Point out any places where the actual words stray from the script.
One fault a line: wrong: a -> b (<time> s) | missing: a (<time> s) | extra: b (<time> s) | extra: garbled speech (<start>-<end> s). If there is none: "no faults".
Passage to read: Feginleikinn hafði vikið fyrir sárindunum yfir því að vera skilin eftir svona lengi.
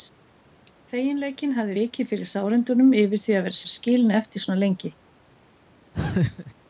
extra: vera (3.6 s)